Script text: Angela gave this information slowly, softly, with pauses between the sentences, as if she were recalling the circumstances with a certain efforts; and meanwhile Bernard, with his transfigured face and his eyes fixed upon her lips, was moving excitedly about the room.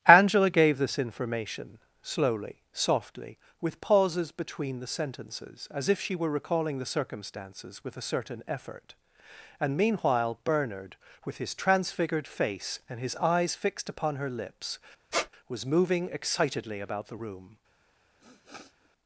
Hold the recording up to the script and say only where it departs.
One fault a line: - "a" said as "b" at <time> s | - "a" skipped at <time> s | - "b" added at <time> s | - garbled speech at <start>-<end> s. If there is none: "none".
- "efforts" said as "effort" at 8.5 s